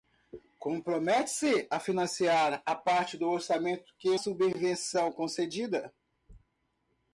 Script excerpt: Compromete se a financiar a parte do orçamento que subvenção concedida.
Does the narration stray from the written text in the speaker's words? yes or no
no